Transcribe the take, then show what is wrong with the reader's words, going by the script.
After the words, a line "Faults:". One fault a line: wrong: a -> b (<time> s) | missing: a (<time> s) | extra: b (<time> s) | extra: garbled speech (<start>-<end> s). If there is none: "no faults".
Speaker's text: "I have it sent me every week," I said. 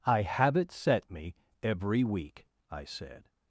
"I have it set me every week," I said.
Faults:
wrong: sent -> set (0.7 s)